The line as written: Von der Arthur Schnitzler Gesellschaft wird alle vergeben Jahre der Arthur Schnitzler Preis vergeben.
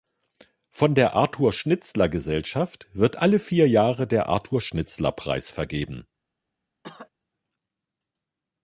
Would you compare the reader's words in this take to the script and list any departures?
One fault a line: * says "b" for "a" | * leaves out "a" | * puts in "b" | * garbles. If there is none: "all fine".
* says "vier" for "vergeben"